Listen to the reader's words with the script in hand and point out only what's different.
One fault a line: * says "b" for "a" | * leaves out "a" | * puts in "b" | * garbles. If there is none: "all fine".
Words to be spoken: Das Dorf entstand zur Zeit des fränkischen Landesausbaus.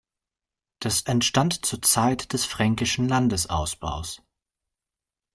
* leaves out "Dorf"